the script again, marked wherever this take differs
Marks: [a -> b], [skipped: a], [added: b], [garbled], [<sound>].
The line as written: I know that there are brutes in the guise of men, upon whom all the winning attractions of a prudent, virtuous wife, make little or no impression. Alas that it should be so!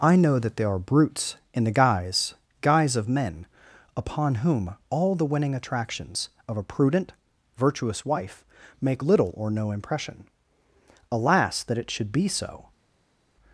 I know that there are brutes in the guise [added: guise] of men, upon whom all the winning attractions of a prudent, virtuous wife, make little or no impression. Alas that it should be so!